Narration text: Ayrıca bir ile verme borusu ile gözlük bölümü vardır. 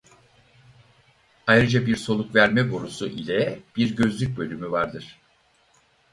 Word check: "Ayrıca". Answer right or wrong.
right